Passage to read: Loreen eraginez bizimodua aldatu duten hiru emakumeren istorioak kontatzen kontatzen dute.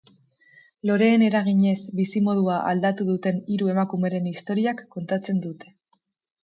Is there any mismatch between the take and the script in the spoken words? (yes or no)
yes